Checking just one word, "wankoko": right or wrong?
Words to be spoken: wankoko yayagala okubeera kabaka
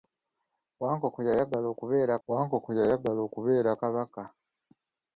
right